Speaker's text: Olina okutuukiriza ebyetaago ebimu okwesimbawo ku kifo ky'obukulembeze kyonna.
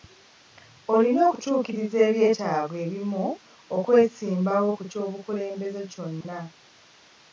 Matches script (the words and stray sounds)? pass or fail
fail